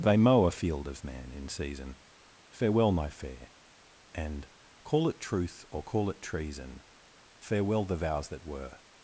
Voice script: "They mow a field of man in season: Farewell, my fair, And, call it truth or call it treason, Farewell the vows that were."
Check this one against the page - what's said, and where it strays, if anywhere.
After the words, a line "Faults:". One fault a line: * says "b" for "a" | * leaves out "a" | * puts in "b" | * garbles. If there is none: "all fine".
"They mow a field of man in season: Farewell, my fair, And, call it truth or call it treason, Farewell the vows that were."
Faults:
all fine